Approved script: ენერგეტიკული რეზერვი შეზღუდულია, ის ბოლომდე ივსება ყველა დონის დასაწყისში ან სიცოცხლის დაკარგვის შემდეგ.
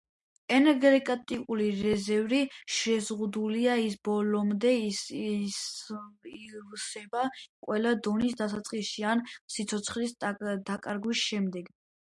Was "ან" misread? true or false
false